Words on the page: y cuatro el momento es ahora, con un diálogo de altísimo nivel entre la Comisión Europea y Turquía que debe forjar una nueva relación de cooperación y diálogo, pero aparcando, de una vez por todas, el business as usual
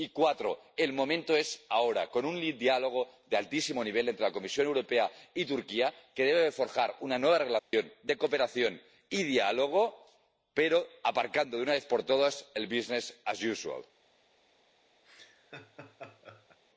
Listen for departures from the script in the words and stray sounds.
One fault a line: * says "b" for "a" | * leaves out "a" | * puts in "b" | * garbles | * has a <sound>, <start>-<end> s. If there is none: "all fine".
* has a dropout, 7.6-7.7 s
* has a laugh, 15.0-16.6 s